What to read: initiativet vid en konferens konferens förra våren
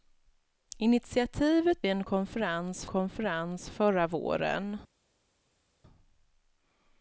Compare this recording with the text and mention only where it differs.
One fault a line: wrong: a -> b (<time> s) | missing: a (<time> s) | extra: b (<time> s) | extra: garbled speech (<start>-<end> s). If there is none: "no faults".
no faults